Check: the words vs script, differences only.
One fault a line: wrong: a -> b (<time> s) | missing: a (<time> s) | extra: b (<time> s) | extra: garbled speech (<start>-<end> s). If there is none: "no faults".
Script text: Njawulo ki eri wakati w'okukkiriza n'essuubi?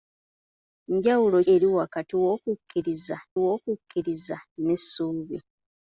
missing: ki (1.4 s)
extra: w'okukkiriza (3.4 s)